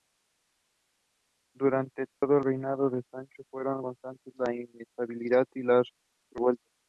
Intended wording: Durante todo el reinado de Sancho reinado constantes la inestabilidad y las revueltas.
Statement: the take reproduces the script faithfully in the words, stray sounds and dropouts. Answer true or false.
false